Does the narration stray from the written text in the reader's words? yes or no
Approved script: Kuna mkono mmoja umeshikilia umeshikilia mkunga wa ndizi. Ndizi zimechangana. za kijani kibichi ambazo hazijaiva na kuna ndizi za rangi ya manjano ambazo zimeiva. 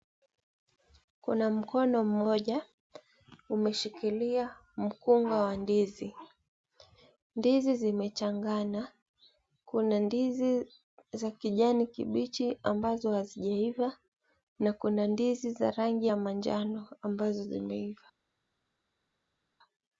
yes